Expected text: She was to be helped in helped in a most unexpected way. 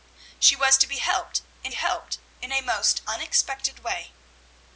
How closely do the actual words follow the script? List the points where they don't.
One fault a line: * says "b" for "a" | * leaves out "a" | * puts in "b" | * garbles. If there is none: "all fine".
all fine